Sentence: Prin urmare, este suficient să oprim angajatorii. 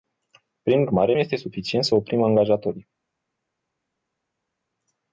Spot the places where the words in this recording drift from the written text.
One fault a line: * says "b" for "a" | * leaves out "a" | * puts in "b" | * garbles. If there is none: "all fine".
all fine